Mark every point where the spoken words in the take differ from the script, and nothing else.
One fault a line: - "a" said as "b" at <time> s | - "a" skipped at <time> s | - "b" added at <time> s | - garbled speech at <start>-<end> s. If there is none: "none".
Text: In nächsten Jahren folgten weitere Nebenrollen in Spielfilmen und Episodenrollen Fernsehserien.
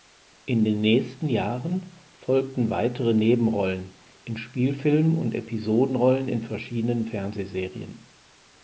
- "den" added at 0.7 s
- "in verschiedenen" added at 6.3 s